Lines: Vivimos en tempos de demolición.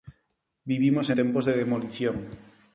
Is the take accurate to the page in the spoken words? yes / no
no